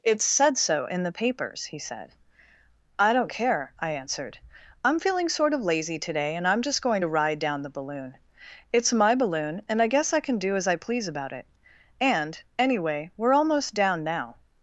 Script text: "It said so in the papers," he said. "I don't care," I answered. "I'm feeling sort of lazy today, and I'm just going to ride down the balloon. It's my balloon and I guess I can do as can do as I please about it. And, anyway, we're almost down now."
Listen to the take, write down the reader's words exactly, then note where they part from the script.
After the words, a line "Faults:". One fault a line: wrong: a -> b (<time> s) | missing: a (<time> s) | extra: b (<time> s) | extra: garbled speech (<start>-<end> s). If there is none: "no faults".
"It said so in the papers," he said. "I don't care," I answered. "I'm feeling sort of lazy today, and I'm just going to ride down the balloon. It's my balloon and I guess I can do as I please about it. And, anyway, we're almost down now."
Faults:
missing: can do as (10.7 s)